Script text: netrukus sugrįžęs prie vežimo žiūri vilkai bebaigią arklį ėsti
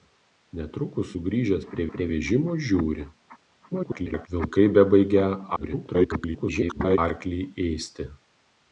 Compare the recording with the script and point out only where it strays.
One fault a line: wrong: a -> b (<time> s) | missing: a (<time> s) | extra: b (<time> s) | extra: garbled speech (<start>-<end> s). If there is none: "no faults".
extra: prie (1.9 s)
extra: garbled speech (3.7-4.3 s)
extra: garbled speech (5.6-7.0 s)